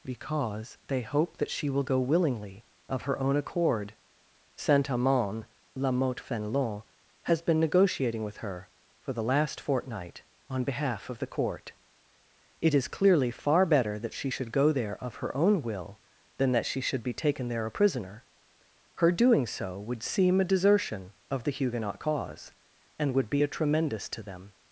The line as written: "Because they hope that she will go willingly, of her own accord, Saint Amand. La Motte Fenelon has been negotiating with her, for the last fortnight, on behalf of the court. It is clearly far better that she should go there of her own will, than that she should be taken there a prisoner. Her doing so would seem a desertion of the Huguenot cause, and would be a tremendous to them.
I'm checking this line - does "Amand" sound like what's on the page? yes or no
yes